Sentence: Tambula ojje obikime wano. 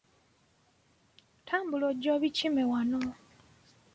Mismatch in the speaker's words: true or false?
false